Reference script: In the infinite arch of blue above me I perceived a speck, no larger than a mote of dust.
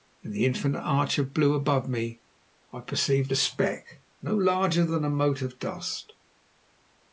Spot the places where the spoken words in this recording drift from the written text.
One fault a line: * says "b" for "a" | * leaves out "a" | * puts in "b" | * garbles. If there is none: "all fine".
all fine